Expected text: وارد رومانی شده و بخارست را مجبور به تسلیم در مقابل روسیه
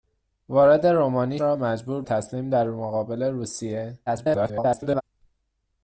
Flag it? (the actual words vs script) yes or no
yes